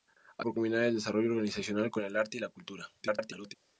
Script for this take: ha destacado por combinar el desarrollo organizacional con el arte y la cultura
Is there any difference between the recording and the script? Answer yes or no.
yes